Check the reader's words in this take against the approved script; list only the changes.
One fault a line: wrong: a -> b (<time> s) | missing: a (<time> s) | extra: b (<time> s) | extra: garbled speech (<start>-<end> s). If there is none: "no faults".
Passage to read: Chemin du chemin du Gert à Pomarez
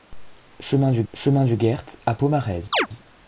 no faults